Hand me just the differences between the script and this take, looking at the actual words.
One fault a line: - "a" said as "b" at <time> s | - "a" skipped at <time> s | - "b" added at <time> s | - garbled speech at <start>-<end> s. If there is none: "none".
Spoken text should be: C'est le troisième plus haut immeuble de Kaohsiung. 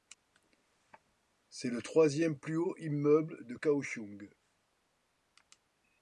none